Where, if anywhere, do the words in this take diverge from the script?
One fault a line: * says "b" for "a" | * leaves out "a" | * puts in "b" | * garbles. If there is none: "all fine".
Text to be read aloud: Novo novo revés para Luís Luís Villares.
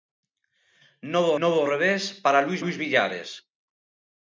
all fine